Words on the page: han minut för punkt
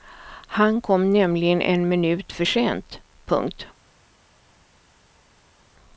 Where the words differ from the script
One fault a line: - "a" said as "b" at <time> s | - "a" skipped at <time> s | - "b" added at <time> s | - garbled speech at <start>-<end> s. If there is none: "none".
- "kom nämligen en" added at 0.8 s
- "sent" added at 2.4 s